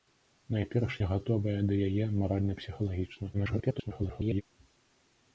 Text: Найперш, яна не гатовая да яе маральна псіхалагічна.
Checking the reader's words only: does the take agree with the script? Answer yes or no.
no